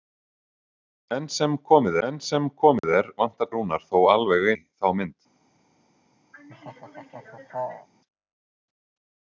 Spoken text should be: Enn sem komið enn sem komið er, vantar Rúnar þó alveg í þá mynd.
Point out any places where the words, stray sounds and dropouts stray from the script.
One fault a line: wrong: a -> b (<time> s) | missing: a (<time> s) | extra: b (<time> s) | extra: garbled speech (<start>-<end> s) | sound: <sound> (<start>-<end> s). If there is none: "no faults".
sound: dropout (2.8-2.8 s)
sound: laugh (6.3-7.9 s)